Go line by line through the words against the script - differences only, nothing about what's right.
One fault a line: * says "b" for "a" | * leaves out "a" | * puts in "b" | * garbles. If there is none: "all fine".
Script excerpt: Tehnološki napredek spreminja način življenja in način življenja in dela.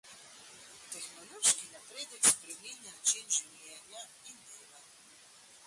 * leaves out "način življenja in"